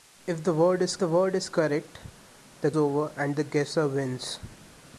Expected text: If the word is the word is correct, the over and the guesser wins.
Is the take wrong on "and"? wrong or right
right